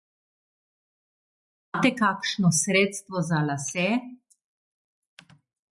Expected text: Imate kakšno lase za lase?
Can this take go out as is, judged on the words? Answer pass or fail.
fail